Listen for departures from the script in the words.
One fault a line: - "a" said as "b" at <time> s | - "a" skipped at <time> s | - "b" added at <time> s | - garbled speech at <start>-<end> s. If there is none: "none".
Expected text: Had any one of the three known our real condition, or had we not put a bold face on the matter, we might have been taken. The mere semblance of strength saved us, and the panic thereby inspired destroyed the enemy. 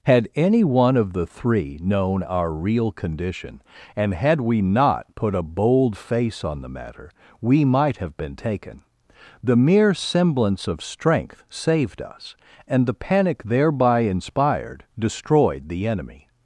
- "or" said as "and" at 4.0 s